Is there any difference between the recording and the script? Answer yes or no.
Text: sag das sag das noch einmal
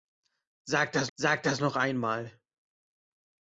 no